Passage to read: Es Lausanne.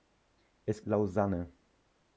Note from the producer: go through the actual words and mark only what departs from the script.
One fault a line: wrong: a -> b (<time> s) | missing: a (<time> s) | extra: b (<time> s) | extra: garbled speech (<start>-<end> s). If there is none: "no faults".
no faults